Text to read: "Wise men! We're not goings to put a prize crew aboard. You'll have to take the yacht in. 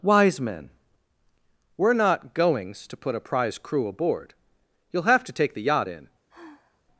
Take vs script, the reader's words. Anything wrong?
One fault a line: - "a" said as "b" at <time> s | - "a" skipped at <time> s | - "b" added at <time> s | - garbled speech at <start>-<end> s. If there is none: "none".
none